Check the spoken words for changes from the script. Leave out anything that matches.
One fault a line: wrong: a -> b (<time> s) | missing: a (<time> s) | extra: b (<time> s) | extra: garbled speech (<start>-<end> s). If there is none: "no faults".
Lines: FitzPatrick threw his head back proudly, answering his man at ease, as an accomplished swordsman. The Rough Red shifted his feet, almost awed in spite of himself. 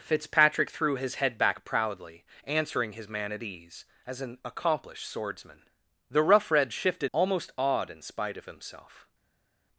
missing: his feet (7.1 s)